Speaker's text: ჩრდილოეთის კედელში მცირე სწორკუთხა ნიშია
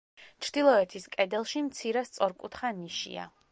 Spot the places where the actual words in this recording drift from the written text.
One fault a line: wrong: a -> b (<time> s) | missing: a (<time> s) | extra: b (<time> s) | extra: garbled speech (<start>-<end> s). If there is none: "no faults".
no faults